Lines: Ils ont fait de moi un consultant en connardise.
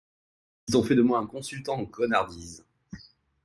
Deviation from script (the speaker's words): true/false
false